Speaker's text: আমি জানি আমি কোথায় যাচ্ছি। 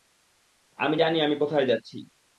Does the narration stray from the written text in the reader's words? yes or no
no